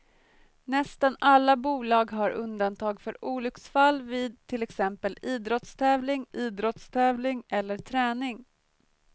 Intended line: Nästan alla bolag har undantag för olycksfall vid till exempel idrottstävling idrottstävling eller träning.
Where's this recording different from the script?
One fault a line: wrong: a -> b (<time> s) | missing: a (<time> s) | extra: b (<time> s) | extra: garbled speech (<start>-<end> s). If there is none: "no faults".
no faults